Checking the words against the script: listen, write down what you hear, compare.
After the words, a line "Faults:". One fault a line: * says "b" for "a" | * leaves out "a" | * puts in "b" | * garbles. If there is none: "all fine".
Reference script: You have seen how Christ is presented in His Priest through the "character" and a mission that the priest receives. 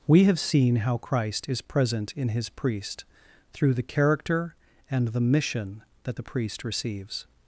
We have seen how Christ is present in His Priest through the "character" and the mission that the priest receives.
Faults:
* says "We" for "You"
* says "present" for "presented"
* says "the" for "a"